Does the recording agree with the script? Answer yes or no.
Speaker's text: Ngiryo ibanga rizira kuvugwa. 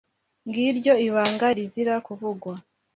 yes